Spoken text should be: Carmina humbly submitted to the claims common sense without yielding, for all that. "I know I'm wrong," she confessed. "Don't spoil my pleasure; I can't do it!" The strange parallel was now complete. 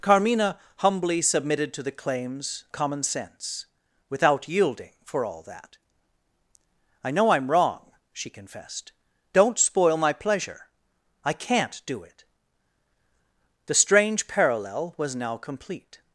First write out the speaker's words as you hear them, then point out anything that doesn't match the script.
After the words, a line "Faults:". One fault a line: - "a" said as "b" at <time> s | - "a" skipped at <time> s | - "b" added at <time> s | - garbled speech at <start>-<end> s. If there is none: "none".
Carmina humbly submitted to the claims common sense without yielding, for all that. "I know I'm wrong," she confessed. "Don't spoil my pleasure; I can't do it!" The strange parallel was now complete.
Faults:
none